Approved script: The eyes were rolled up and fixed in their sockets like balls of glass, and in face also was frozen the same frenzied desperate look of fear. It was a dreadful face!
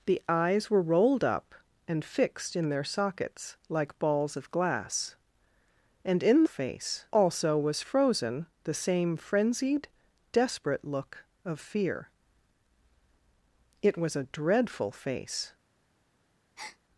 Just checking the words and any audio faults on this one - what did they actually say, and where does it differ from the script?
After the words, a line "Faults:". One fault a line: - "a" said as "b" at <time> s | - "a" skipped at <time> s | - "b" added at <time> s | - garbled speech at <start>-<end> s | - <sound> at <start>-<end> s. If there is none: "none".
The eyes were rolled up and fixed in their sockets like balls of glass, and in face also was frozen the same frenzied desperate look of fear. It was a dreadful face!
Faults:
- breath at 16.6-16.8 s